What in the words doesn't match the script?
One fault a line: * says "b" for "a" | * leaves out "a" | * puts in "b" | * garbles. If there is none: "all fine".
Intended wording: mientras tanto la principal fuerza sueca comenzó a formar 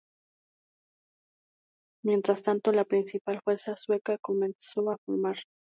all fine